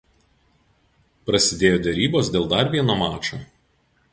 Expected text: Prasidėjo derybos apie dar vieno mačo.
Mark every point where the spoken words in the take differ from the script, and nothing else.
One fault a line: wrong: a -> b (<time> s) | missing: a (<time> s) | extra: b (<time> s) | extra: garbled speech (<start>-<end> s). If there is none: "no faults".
wrong: apie -> dėl (2.4 s)